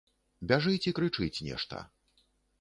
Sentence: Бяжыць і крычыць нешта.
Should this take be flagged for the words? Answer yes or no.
no